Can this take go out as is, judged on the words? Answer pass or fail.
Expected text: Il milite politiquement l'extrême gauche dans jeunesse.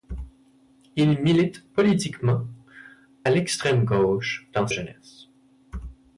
pass